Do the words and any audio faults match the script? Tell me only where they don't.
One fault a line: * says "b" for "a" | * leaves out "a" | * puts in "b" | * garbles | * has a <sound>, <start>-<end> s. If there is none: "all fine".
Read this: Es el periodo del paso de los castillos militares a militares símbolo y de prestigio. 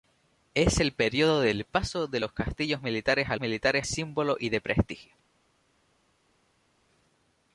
all fine